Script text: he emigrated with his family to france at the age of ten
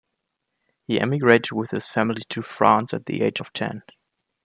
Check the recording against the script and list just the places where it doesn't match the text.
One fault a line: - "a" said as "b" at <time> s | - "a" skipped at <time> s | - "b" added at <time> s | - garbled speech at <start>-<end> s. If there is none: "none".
none